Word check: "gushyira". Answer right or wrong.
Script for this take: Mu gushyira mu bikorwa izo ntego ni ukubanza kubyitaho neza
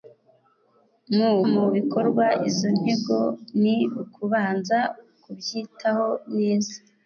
wrong